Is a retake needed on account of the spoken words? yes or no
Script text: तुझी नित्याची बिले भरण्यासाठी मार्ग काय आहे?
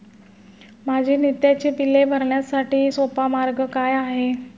yes